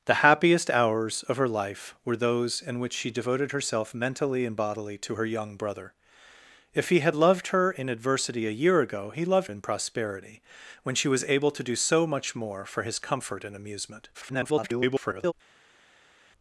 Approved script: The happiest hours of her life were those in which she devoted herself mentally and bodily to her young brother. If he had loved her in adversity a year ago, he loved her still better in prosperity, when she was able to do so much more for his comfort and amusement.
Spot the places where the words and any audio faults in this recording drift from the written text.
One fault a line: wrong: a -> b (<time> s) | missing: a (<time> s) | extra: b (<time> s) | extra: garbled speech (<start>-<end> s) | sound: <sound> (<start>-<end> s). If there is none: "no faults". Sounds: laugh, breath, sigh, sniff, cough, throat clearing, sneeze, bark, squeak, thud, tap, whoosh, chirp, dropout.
missing: her still better (9.5 s)
extra: garbled speech (14.1-15.3 s)